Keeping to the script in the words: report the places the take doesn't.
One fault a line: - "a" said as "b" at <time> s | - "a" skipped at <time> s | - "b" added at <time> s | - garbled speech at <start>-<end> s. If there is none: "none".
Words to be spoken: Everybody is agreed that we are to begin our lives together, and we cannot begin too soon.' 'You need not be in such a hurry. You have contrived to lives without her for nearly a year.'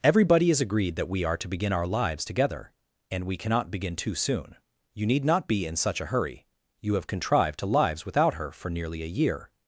none